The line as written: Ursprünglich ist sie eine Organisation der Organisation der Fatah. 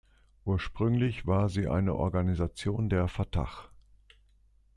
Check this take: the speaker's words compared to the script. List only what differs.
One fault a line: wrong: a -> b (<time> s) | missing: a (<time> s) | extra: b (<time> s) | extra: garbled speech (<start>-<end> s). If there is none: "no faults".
wrong: ist -> war (1.3 s)
missing: Organisation der (3.1 s)